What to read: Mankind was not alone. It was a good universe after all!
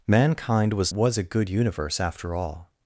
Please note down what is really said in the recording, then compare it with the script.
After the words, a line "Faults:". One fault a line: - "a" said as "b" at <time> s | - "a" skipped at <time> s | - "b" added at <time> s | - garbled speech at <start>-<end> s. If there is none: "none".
Mankind was was a good universe after all!
Faults:
- "not alone It" skipped at 0.9 s